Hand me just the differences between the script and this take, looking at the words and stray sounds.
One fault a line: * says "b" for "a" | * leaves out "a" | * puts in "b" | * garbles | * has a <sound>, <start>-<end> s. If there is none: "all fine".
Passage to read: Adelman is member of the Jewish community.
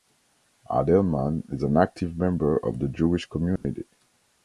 * puts in "an active"
* has a dropout, 3.6-3.6 s